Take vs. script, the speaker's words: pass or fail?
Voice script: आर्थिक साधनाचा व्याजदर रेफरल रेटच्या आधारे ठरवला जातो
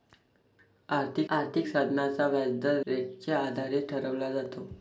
fail